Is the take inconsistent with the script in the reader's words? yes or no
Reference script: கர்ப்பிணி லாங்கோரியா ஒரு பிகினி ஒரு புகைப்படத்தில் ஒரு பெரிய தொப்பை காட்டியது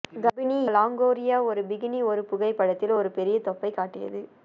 no